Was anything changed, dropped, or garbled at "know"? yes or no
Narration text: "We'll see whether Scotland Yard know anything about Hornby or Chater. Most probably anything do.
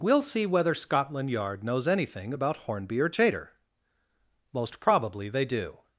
yes